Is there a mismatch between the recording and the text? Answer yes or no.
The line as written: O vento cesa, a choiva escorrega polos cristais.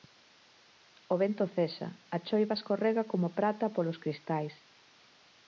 yes